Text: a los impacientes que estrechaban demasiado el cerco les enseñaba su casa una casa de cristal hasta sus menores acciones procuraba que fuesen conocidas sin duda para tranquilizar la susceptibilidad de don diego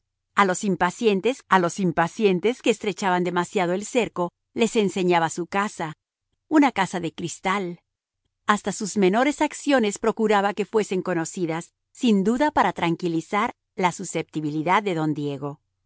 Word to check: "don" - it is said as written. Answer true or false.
true